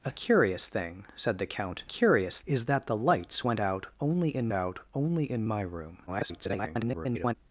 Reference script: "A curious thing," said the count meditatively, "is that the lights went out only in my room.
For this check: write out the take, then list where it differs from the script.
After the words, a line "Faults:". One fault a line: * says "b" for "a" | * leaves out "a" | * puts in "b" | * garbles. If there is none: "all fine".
"A curious thing," said the count curious, "is that the lights went out only in out only in my room. [garbled]
Faults:
* says "curious" for "meditatively"
* puts in "out only in"
* garbles